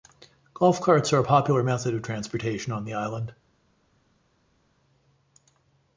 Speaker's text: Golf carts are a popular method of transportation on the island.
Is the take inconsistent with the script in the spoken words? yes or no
no